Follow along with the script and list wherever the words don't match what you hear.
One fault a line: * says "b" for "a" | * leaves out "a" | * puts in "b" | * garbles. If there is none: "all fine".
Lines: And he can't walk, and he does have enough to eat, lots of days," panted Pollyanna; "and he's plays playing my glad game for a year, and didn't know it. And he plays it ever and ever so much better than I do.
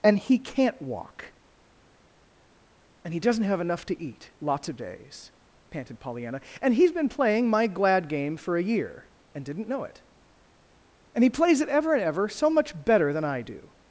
* says "doesn't" for "does"
* says "been" for "plays"